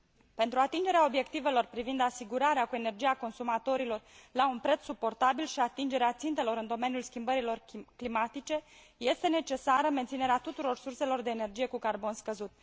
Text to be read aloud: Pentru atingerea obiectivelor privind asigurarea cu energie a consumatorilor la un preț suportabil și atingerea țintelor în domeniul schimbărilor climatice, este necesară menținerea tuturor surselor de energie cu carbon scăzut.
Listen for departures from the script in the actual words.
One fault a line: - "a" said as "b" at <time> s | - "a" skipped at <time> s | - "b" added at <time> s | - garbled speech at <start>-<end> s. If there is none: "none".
none